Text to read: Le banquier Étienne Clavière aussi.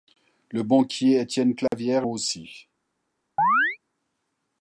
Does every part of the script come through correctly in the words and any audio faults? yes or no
no